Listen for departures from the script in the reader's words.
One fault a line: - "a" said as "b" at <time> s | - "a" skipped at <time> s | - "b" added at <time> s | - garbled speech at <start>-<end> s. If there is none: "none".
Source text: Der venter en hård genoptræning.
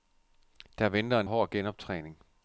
none